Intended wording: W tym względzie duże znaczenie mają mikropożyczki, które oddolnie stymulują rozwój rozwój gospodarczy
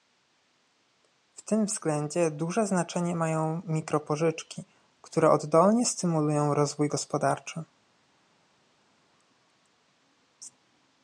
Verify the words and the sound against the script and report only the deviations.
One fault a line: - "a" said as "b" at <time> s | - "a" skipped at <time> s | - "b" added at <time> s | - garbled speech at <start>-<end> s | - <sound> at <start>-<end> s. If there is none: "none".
- "rozwój" skipped at 6.9 s